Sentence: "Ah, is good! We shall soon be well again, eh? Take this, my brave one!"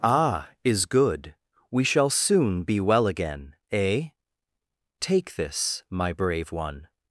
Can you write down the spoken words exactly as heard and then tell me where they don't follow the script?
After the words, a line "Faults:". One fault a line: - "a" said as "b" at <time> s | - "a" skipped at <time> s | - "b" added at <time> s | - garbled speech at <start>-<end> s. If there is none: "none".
"Ah, is good! We shall soon be well again, eh? Take this, my brave one!"
Faults:
none